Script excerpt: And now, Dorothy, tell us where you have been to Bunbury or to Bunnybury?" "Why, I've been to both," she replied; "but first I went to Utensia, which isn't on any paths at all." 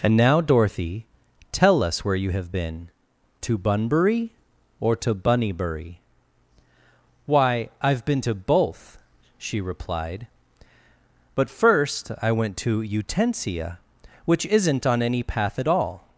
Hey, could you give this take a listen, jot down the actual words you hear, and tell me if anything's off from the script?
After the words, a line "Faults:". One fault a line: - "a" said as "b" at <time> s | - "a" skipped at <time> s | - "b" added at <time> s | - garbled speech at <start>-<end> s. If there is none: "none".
And now, Dorothy, tell us where you have been to Bunbury or to Bunnybury?" "Why, I've been to both," she replied; "but first I went to Utensia, which isn't on any path at all."
Faults:
- "paths" said as "path" at 15.2 s